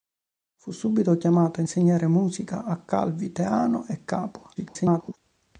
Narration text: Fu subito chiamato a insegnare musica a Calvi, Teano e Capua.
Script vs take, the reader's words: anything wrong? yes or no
yes